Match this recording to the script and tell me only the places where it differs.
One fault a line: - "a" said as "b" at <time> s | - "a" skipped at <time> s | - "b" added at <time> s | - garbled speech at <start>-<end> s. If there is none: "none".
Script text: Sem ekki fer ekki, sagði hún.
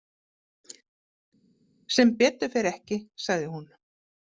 - "ekki" said as "betur" at 2.2 s